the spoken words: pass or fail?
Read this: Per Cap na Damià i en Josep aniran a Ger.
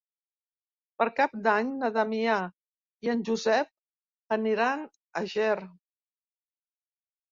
fail